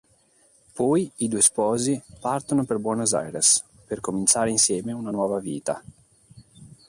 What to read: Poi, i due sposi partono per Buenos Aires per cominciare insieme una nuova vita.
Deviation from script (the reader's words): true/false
false